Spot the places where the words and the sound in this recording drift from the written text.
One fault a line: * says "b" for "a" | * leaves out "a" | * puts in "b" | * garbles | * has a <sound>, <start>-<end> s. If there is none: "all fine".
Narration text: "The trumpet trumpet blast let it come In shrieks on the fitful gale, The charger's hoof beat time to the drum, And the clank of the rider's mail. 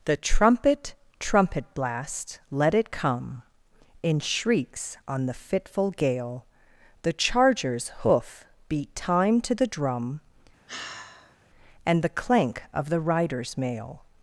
* has a sigh, 10.7-11.4 s